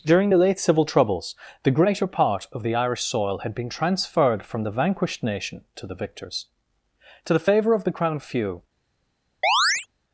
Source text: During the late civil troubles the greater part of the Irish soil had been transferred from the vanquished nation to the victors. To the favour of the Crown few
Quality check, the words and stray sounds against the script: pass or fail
fail